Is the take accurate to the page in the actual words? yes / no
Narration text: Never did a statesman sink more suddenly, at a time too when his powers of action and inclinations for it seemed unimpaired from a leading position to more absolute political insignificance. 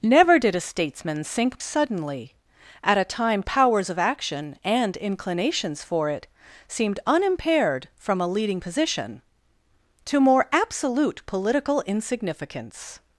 no